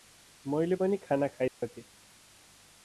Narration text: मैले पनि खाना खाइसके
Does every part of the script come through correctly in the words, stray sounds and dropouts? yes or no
no